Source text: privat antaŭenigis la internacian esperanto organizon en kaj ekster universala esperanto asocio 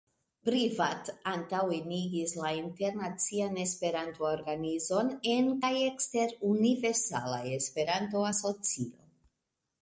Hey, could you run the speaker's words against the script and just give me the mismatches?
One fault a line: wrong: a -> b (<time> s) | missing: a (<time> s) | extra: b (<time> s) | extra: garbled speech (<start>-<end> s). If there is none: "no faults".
no faults